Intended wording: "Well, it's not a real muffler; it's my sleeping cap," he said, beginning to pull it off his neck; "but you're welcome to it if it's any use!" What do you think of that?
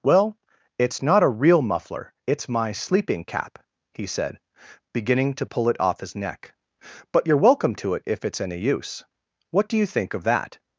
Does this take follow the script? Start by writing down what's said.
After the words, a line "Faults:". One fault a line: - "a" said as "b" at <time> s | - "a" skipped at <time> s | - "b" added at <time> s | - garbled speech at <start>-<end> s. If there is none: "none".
"Well, it's not a real muffler; it's my sleeping cap," he said, beginning to pull it off his neck; "but you're welcome to it if it's any use!" What do you think of that?
Faults:
none